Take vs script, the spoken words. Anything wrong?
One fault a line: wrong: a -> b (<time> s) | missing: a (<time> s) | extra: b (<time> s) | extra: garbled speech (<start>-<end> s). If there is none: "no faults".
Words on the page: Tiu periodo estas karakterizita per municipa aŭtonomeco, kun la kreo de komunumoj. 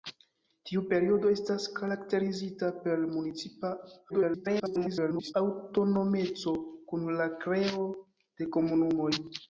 extra: garbled speech (4.1-5.3 s)